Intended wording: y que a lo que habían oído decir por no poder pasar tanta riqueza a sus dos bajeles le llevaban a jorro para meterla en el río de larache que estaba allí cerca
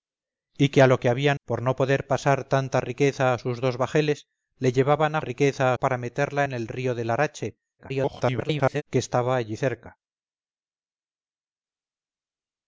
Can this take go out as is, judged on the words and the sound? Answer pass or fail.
fail